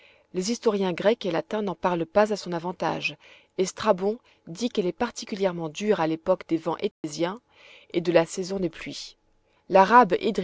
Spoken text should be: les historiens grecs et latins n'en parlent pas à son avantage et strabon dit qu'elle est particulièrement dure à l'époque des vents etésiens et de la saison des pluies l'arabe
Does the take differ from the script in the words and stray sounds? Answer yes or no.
yes